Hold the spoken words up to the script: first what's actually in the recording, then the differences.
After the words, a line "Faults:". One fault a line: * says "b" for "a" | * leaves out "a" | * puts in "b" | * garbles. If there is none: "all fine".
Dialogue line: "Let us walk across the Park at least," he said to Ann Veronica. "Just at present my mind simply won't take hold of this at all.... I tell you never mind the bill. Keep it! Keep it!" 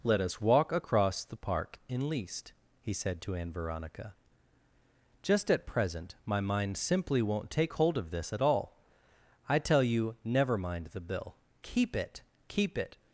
"Let us walk across the Park in least," he said to Ann Veronica. "Just at present my mind simply won't take hold of this at all.... I tell you never mind the bill. Keep it! Keep it!"
Faults:
* says "in" for "at"